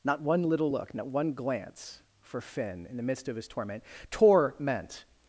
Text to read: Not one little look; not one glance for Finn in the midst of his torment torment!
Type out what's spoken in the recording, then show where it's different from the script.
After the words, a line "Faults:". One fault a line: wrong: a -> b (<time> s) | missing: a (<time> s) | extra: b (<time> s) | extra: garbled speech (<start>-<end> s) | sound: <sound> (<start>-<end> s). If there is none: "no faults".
Not one little look; not one glance for Finn in the midst of his torment torment!
Faults:
no faults